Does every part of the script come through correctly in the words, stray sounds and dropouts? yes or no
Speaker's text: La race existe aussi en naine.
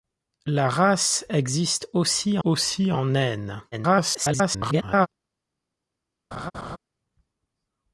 no